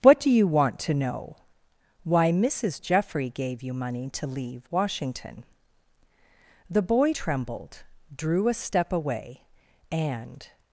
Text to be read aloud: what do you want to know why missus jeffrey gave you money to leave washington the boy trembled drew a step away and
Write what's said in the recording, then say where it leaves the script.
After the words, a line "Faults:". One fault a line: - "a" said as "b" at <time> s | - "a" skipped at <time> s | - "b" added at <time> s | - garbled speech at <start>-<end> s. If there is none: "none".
what do you want to know why missus jeffrey gave you money to leave washington the boy trembled drew a step away and
Faults:
none